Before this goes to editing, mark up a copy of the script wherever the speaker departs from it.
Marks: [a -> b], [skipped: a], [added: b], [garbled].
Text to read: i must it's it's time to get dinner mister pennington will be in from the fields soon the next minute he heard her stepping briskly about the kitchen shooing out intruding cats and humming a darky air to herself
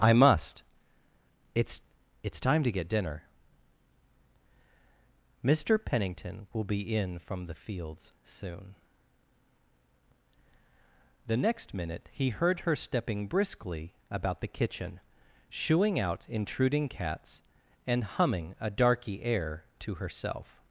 i must it's it's time to get dinner mister pennington will be in from the fields soon the next minute he heard her stepping briskly about the kitchen shooing out intruding cats and humming a darky air to herself